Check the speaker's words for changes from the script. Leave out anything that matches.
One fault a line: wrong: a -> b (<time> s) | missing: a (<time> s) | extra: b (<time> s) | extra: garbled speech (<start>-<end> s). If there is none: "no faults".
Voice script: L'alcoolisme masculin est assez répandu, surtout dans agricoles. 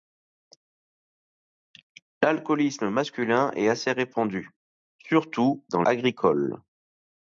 no faults